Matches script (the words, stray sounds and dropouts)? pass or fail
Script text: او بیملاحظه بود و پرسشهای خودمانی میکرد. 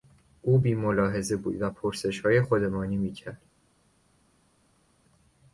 pass